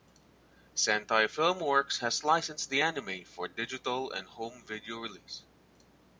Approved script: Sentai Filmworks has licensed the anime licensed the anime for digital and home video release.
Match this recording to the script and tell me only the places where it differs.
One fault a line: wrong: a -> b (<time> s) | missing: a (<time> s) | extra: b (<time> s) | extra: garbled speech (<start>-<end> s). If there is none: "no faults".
missing: licensed the anime (3.2 s)